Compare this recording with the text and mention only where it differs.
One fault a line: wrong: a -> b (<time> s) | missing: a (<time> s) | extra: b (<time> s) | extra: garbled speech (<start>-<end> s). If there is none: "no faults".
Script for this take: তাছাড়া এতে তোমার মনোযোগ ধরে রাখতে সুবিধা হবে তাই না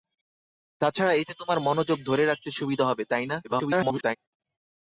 extra: garbled speech (3.4-4.2 s)